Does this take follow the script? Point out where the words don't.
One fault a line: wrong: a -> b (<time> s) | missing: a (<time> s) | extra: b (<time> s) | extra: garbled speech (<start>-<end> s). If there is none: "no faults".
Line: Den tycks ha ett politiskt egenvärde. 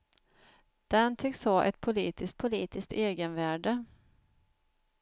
extra: politiskt (2.4 s)